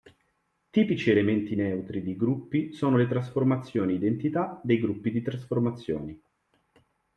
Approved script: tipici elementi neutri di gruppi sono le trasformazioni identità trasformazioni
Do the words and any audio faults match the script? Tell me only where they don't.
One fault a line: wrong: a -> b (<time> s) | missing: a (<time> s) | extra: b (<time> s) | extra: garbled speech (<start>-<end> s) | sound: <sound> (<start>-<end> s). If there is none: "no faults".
extra: dei gruppi di (4.6 s)